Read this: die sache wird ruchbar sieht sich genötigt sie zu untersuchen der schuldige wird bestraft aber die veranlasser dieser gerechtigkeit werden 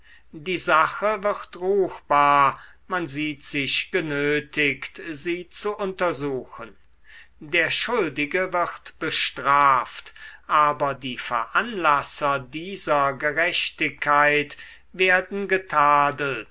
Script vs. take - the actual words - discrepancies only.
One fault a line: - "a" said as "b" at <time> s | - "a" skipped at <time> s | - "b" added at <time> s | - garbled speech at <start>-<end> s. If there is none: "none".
- "man" added at 2.9 s